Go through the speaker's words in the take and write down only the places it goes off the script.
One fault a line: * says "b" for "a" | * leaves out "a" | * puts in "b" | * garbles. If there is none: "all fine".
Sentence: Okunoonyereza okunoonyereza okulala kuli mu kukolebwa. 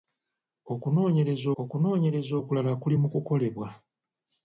all fine